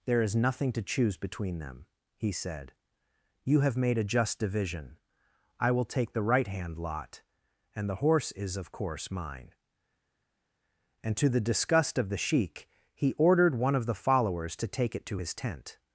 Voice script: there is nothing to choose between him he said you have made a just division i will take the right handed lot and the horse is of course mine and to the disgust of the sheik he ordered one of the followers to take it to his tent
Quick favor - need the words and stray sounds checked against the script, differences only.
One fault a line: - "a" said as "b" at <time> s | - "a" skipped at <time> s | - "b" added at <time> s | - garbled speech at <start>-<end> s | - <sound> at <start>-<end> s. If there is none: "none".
- "him" said as "them" at 1.6 s
- "handed" said as "hand" at 6.5 s